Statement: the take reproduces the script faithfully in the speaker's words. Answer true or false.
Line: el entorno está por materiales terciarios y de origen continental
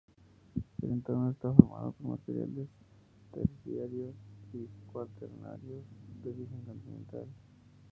false